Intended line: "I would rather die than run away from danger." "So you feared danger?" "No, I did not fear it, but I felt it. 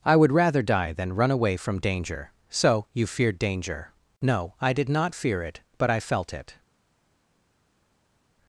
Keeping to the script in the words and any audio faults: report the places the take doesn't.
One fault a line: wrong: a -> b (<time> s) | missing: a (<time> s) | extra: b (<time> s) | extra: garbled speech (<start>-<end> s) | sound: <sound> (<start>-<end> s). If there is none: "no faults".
no faults